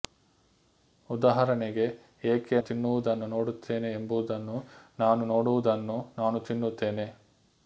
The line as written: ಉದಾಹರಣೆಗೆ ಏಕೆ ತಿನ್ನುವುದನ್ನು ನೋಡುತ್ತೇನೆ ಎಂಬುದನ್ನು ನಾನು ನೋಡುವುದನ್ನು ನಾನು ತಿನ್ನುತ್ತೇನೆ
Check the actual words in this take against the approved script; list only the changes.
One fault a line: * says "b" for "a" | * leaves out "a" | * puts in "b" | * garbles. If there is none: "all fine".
all fine